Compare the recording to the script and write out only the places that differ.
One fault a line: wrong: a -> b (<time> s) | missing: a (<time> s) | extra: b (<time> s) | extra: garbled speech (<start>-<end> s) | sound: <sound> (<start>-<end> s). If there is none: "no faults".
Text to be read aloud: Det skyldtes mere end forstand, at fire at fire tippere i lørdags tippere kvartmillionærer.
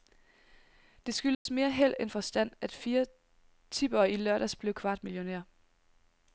sound: dropout (1.3-1.5 s)
extra: held (1.7 s)
missing: at fire (3.0 s)
wrong: tippere -> blev (4.5 s)